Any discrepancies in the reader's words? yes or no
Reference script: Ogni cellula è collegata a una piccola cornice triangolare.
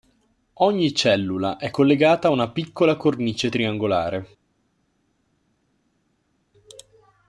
no